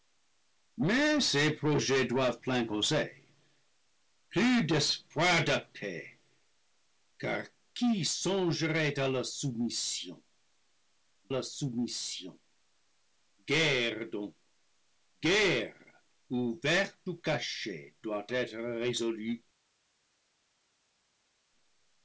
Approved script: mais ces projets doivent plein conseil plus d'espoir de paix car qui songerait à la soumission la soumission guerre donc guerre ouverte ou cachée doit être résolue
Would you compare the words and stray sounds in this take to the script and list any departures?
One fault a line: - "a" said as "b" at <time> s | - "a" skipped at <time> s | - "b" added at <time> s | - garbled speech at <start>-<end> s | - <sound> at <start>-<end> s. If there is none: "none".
none